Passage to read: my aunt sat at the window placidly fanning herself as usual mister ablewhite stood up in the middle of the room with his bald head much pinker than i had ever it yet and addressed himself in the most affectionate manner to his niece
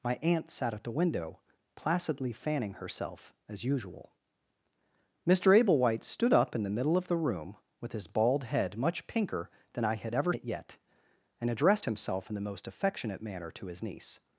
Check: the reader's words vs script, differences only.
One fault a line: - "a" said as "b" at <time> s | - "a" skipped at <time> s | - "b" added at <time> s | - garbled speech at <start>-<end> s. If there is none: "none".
none